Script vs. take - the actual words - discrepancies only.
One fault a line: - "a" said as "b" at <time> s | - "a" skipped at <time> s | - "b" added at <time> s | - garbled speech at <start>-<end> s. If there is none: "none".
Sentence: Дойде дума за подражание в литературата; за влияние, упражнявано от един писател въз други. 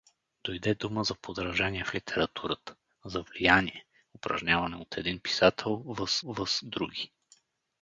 - "въз" added at 6.2 s